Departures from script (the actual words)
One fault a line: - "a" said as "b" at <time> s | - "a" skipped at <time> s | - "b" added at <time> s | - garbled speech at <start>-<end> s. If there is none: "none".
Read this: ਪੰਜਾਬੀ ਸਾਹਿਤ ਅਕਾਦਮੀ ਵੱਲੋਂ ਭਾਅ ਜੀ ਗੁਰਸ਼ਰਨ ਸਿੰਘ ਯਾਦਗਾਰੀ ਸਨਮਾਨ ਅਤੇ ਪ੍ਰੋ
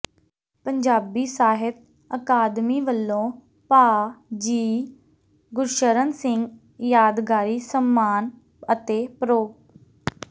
none